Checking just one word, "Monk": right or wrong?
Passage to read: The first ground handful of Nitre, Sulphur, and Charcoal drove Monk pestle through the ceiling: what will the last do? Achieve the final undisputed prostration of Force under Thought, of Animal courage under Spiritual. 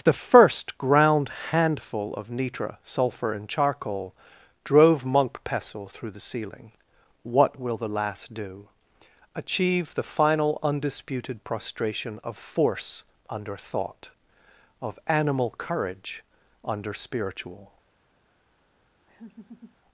right